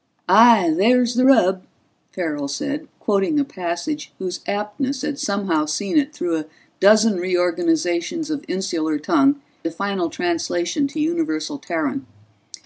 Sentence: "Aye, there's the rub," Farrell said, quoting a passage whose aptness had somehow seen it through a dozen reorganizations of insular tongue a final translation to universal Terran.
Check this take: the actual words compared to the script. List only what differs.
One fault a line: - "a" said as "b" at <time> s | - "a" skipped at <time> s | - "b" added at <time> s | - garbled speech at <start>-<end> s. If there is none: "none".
none